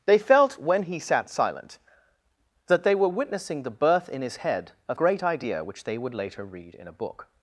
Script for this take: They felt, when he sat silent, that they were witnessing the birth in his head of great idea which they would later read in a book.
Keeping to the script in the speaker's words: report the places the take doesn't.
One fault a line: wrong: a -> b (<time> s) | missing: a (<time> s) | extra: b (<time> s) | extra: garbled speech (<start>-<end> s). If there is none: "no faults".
no faults